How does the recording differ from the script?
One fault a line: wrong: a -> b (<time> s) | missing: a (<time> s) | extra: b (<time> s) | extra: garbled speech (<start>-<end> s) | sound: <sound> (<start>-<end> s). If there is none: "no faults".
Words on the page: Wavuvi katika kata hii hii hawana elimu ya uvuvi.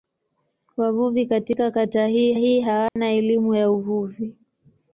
sound: dropout (2.9-3.0 s)